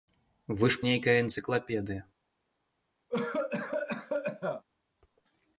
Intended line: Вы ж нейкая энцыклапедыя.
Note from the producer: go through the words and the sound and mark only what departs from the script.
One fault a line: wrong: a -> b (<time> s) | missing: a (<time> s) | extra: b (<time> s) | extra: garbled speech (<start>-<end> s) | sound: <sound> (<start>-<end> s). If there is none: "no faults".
sound: cough (3.1-4.6 s)